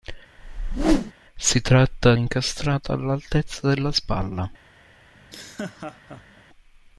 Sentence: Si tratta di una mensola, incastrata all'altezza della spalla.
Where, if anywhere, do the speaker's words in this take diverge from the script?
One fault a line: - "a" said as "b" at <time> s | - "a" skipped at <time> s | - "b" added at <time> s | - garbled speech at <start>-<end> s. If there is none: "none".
- "di una mensola" skipped at 2.1 s